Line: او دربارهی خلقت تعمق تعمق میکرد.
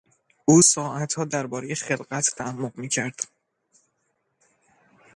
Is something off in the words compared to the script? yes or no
yes